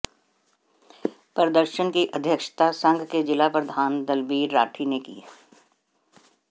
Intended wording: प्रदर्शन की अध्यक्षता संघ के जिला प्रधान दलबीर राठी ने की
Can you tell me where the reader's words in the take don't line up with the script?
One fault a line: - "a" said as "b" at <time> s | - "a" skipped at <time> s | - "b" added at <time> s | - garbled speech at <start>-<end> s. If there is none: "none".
none